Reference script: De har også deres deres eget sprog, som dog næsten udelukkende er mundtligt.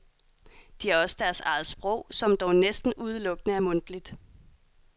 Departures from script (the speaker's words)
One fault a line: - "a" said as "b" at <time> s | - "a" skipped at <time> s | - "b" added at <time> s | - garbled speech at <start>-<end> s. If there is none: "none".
- "deres" skipped at 1.4 s